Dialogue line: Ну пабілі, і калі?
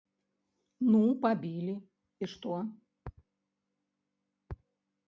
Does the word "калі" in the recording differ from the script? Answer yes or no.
yes